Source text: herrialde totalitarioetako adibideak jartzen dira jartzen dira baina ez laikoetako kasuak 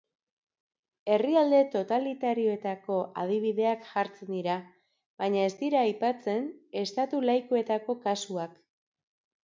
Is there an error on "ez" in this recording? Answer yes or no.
yes